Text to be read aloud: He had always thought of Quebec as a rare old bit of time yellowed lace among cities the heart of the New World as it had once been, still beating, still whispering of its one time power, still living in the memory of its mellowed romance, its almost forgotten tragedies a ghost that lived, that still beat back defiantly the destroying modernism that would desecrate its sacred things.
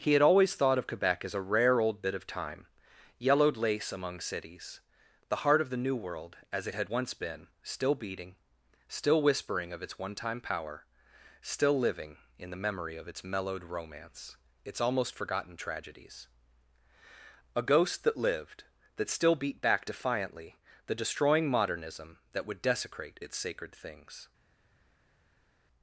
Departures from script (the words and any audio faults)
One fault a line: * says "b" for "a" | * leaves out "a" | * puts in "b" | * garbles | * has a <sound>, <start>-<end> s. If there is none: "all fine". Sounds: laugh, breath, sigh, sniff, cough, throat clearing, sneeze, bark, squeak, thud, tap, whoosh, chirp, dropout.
all fine